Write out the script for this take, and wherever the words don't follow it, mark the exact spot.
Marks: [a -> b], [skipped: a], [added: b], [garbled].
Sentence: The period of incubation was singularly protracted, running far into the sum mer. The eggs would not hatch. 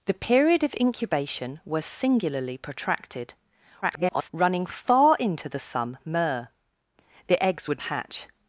The period of incubation was singularly protracted, [garbled] running far into the sum mer. The eggs would [skipped: not] hatch.